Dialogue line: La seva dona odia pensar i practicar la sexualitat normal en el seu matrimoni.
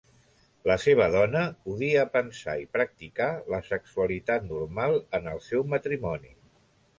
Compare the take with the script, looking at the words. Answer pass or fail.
pass